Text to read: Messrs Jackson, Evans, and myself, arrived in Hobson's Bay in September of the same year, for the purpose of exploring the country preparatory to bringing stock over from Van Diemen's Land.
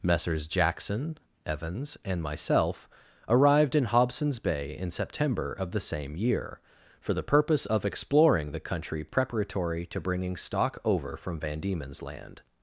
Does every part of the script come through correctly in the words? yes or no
yes